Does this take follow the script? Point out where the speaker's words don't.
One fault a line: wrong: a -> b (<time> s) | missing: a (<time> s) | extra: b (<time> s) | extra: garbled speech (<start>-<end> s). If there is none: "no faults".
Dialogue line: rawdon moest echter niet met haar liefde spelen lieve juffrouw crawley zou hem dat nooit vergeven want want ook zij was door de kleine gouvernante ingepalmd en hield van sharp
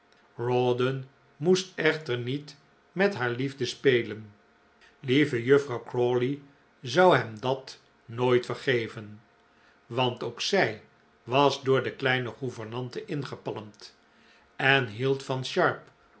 missing: want (10.2 s)